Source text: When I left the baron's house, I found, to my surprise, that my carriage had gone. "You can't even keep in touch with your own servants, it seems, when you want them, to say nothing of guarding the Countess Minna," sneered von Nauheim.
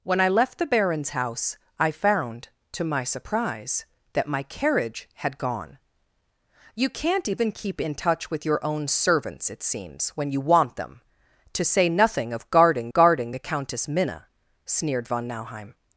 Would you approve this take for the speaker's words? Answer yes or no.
no